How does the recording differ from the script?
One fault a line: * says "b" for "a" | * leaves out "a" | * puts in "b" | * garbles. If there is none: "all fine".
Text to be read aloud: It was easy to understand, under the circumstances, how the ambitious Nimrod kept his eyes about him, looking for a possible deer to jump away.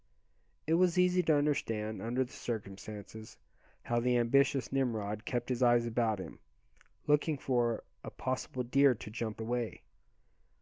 all fine